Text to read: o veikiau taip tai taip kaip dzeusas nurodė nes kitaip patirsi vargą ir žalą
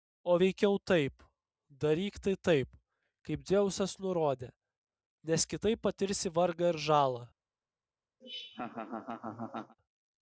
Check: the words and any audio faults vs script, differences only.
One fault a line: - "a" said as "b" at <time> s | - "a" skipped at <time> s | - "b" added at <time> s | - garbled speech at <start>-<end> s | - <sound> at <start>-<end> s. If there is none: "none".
- "daryk" added at 1.8 s
- laugh at 8.2-9.8 s